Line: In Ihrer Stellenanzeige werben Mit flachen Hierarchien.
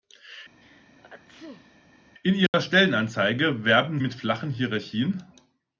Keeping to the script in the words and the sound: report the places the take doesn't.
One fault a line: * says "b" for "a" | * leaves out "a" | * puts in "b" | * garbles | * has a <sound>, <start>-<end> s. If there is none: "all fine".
* has a sneeze, 0.6-1.8 s
* has a dropout, 2.5-2.5 s